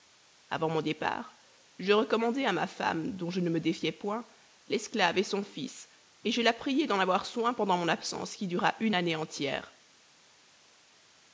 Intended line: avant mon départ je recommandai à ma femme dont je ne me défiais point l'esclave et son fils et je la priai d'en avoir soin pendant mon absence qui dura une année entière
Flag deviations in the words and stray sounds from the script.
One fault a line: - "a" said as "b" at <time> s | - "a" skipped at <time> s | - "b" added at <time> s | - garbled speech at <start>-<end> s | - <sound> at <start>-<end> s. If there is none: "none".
none